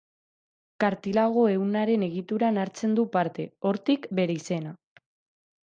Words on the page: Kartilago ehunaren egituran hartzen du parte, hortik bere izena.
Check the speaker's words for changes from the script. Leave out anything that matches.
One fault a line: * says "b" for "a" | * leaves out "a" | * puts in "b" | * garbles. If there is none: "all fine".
all fine